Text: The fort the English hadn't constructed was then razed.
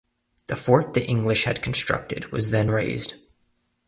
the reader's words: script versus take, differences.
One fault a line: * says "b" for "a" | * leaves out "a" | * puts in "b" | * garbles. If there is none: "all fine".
* says "had" for "hadn't"